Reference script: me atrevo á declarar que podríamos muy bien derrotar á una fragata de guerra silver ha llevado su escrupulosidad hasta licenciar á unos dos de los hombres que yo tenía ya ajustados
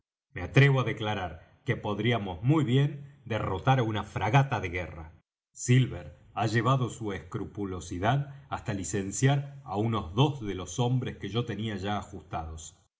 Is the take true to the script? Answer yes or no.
yes